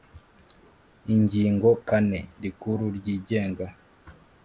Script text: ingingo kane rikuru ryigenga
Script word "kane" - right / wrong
right